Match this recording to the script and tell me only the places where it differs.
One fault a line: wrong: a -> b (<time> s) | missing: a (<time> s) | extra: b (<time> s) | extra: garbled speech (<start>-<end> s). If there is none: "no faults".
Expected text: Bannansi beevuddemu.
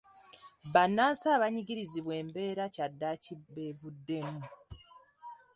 extra: abanyigirizibwa embeera kyaddaaki (1.4 s)